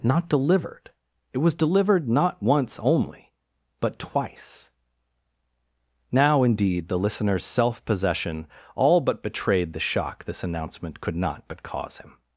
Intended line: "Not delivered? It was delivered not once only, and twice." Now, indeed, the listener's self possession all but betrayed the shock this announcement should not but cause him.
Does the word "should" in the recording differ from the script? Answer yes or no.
yes